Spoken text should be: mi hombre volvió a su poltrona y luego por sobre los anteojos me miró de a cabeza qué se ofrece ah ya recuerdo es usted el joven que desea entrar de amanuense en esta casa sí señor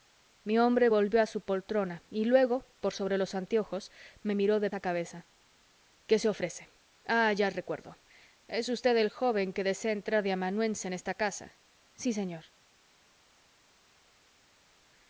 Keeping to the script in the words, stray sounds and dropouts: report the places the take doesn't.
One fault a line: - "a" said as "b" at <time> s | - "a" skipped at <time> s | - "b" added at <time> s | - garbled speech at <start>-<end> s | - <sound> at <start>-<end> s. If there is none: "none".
none